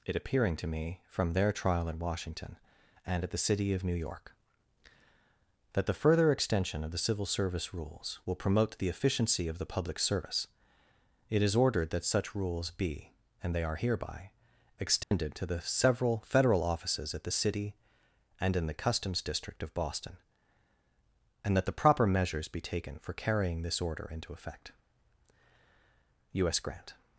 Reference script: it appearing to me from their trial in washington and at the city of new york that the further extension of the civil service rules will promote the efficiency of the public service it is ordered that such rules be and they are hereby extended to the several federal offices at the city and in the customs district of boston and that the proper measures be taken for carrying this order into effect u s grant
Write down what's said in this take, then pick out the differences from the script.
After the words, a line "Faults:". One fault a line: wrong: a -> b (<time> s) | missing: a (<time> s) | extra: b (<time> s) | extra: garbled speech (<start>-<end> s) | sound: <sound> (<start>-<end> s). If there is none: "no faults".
it appearing to me from their trial in washington and at the city of new york that the further extension of the civil service rules will promote the efficiency of the public service it is ordered that such rules be and they are hereby extended to the several federal offices at the city and in the customs district of boston and that the proper measures be taken for carrying this order into effect u s grant
Faults:
sound: dropout (15.0-15.1 s)